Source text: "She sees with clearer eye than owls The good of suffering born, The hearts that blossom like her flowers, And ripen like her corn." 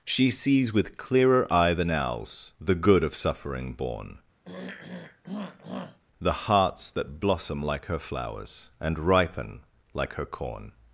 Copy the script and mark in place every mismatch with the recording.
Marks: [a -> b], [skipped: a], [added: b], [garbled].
"She sees with clearer eye than owls The good of suffering born, The hearts that blossom like her flowers, And ripen like her corn."